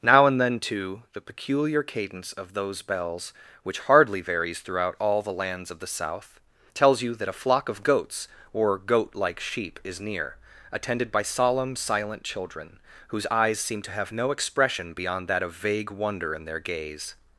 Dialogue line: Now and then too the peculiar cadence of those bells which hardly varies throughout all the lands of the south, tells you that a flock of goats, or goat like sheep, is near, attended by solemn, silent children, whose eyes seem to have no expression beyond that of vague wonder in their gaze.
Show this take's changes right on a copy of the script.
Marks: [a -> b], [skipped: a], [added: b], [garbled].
Now and then too the peculiar cadence of those bells which hardly varies throughout all the lands of the south, tells you that a flock of goats, or goat like sheep, is near, attended by solemn, silent children, whose eyes seem to have no expression beyond that of vague wonder in their gaze.